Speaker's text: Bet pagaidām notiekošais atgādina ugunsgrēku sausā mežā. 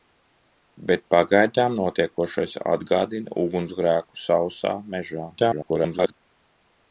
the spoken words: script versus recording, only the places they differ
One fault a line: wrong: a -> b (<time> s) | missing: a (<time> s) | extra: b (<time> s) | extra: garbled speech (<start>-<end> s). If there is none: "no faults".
extra: garbled speech (5.4-6.1 s)